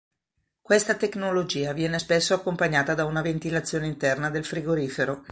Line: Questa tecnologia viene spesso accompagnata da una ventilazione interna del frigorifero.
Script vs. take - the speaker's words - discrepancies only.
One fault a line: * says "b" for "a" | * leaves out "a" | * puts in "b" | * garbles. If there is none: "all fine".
all fine